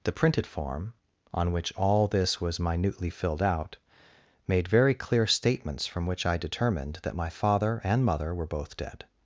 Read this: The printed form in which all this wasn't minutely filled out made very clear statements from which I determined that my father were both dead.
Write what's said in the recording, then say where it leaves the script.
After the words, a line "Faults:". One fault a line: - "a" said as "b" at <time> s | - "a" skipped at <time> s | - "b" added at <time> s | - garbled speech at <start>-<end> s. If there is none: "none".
The printed form on which all this was minutely filled out made very clear statements from which I determined that my father and mother were both dead.
Faults:
- "in" said as "on" at 1.3 s
- "wasn't" said as "was" at 2.4 s
- "and mother" added at 7.8 s